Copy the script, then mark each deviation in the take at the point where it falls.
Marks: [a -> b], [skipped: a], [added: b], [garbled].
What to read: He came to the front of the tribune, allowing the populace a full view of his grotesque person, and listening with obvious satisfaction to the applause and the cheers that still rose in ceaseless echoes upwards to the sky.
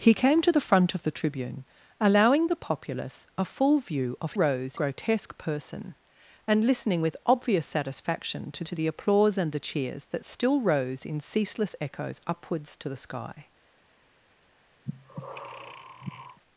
He came to the front of the tribune, allowing the populace a full view of [his -> rose] grotesque person, and listening with obvious satisfaction to [added: to] the applause and the cheers that still rose in ceaseless echoes upwards to the sky.